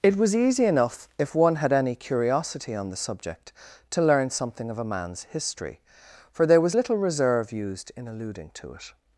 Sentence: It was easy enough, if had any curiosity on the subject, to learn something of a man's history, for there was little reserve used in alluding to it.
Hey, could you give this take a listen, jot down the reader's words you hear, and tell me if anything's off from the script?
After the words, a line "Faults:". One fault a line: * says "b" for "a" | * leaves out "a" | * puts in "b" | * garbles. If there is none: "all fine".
It was easy enough, if one had any curiosity on the subject, to learn something of a man's history, for there was little reserve used in alluding to it.
Faults:
* puts in "one"